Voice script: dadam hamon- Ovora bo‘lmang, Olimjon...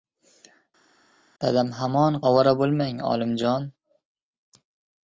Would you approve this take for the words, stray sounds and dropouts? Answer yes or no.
yes